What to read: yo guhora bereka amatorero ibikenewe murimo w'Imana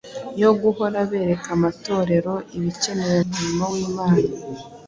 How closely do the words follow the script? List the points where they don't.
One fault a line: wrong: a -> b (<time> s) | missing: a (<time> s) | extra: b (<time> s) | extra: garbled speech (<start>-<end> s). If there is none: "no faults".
no faults